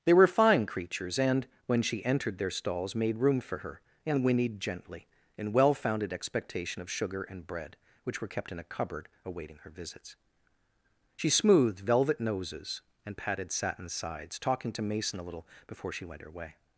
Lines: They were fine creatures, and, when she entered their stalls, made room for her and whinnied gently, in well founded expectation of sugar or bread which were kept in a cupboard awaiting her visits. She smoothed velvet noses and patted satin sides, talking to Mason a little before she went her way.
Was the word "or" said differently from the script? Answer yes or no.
yes